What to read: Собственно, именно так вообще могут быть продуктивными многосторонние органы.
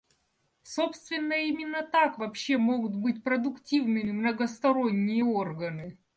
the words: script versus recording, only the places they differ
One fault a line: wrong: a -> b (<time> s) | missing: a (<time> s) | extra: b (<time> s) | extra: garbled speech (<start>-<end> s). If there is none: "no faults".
no faults